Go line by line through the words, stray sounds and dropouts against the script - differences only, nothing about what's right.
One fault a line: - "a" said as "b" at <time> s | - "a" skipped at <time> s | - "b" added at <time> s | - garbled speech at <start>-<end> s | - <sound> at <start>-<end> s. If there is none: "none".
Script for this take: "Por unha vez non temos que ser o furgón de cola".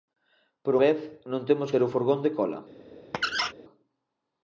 - "unha" skipped at 0.7 s
- "que" skipped at 1.7 s
- squeak at 3.1-3.5 s